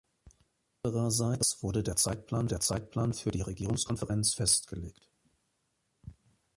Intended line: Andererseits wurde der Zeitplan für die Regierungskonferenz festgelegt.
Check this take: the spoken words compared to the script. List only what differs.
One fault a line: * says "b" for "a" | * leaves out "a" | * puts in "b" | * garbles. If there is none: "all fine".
* puts in "der Zeitplan"